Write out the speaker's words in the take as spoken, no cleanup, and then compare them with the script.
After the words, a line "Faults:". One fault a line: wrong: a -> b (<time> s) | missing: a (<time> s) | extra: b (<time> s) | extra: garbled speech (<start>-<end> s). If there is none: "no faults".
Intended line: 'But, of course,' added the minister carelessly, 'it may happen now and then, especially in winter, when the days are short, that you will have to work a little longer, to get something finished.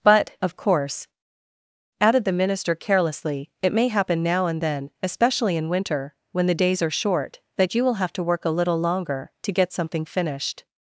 'But, of course,' added the minister carelessly, 'it may happen now and then, especially in winter, when the days are short, that you will have to work a little longer, to get something finished.
Faults:
no faults